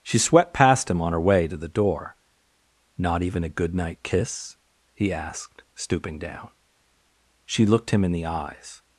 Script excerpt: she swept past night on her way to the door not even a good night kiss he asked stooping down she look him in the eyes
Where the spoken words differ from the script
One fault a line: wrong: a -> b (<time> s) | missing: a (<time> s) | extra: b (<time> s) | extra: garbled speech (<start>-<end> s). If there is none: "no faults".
wrong: night -> him (0.9 s)
wrong: look -> looked (7.7 s)